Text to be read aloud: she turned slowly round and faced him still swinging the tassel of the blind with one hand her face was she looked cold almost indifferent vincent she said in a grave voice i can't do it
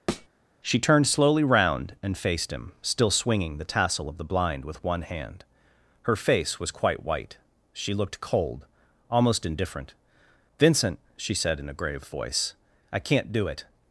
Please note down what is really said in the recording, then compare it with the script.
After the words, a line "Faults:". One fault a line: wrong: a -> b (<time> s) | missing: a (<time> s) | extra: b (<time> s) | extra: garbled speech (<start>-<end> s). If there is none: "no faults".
she turned slowly round and faced him still swinging the tassel of the blind with one hand her face was quite white she looked cold almost indifferent vincent she said in a grave voice i can't do it
Faults:
extra: quite white (6.7 s)